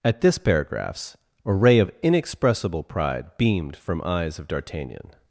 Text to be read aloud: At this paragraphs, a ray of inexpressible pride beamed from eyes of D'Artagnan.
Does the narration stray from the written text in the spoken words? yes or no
no